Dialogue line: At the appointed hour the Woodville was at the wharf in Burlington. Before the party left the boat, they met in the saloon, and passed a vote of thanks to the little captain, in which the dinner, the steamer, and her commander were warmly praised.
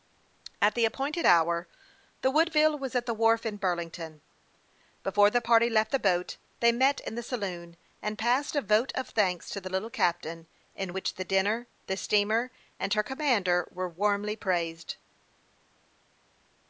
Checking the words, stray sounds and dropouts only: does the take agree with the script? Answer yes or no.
yes